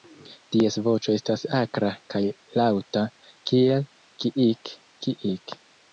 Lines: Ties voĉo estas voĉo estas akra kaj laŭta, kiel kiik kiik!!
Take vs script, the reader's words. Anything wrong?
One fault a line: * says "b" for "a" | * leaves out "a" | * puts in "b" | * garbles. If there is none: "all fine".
* leaves out "voĉo estas"